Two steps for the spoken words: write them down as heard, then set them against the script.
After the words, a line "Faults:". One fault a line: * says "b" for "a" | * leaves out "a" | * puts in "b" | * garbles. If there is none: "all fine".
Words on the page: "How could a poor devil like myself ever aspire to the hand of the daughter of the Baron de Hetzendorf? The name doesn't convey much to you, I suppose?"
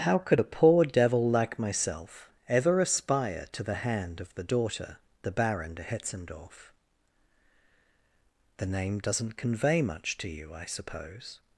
"How could a poor devil like myself ever aspire to the hand of the daughter the Baron de Hetzendorf? The name doesn't convey much to you, I suppose?"
Faults:
* leaves out "of"